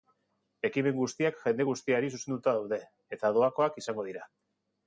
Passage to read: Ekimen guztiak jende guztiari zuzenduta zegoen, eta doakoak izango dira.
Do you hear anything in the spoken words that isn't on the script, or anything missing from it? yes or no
yes